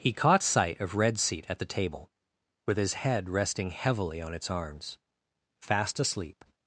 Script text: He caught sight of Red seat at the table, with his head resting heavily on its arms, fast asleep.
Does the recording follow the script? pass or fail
pass